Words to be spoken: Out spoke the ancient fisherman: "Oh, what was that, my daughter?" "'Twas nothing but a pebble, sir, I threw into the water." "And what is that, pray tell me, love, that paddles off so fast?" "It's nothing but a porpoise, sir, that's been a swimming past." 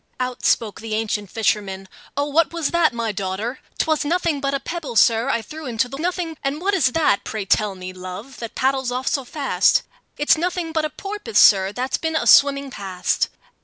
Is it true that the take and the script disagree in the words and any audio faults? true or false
true